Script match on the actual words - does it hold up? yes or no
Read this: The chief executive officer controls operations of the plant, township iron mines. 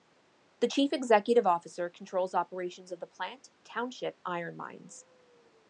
yes